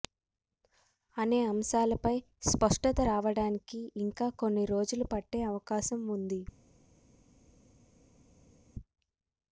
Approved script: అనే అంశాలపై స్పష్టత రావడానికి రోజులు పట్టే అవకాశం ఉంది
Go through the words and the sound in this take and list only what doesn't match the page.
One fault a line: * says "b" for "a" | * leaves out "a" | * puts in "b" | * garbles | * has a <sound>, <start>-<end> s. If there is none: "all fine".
* puts in "ఇంకా కొన్ని"